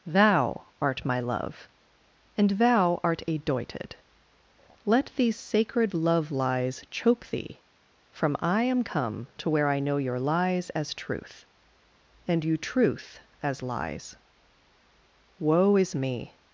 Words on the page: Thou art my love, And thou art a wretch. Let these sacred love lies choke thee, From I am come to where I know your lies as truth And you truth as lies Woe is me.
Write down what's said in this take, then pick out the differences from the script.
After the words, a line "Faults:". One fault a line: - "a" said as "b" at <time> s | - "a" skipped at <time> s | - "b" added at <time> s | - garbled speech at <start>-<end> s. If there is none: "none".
Thou art my love, And thou art a doited. Let these sacred love lies choke thee, From I am come to where I know your lies as truth And you truth as lies Woe is me.
Faults:
- "wretch" said as "doited" at 3.4 s